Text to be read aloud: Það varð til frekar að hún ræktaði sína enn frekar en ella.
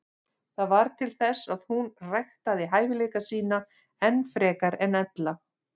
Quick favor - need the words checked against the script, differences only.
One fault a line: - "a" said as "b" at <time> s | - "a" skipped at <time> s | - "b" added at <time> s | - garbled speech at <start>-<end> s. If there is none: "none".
- "frekar" said as "þess" at 1.2 s
- "hæfileika" added at 2.7 s